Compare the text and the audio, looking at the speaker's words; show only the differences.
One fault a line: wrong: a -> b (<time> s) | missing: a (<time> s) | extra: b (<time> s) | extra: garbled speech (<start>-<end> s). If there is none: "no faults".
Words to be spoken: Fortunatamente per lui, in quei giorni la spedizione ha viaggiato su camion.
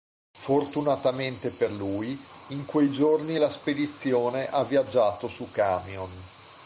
no faults